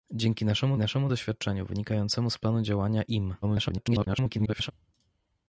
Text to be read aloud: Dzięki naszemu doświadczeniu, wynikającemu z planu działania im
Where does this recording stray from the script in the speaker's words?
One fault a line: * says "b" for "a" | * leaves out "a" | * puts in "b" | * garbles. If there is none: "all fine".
* puts in "naszemu"
* garbles